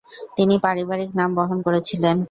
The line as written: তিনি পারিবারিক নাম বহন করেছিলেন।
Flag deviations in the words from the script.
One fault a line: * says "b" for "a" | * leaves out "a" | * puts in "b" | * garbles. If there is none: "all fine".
all fine